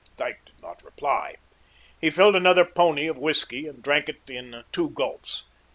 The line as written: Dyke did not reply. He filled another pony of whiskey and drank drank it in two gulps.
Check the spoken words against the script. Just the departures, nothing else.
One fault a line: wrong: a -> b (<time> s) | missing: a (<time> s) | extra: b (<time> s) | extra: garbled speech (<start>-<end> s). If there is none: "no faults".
missing: drank (4.1 s)